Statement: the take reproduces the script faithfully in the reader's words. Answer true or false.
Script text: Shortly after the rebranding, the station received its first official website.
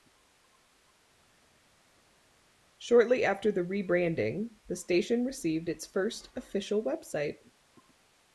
true